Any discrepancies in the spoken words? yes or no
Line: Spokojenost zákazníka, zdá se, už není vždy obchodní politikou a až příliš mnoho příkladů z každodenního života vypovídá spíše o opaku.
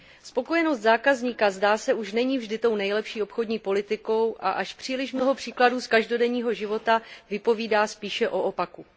yes